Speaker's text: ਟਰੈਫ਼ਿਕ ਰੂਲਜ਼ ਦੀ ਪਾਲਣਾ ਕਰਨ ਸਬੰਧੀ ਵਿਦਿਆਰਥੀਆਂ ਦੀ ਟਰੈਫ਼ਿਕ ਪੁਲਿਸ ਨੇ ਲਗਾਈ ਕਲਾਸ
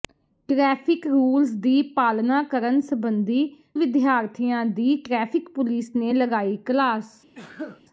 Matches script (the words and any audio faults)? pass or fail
fail